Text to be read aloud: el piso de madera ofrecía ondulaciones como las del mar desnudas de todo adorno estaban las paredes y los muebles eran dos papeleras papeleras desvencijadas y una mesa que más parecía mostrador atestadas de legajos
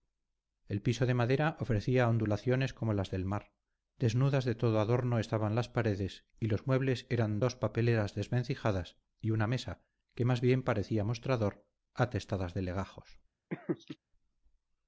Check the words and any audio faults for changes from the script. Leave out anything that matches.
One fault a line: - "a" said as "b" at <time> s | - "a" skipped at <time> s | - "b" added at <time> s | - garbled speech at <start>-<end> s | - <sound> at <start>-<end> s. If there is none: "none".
- "papeleras" skipped at 8.1 s
- "bien" added at 10.4 s
- laugh at 13.5-14.0 s